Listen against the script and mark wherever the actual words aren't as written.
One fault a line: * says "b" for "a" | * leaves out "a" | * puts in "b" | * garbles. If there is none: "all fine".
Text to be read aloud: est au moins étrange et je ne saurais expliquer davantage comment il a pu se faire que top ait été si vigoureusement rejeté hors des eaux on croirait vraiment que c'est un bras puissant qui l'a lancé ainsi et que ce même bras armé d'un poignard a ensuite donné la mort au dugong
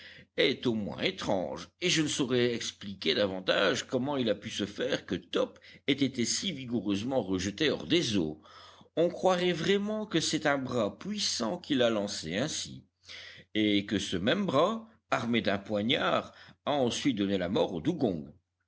all fine